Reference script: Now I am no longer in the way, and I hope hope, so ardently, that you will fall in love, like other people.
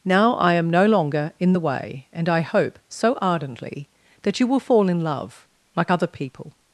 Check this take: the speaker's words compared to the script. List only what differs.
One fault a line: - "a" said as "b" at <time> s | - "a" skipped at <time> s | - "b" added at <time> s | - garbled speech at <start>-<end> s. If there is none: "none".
- "hope" skipped at 2.8 s